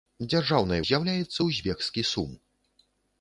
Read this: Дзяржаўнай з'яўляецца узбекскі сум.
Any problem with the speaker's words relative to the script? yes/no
no